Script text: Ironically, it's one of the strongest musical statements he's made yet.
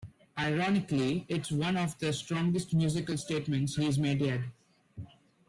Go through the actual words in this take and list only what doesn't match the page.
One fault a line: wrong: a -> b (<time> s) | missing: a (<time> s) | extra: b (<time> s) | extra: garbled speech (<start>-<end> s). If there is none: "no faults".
no faults